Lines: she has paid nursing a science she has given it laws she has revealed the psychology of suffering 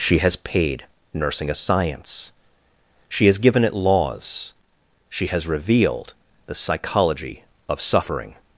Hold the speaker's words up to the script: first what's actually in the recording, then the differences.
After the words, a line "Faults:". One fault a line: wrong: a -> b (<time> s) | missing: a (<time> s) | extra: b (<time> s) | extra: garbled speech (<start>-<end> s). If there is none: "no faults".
she has paid nursing a science she has given it laws she has revealed the psychology of suffering
Faults:
no faults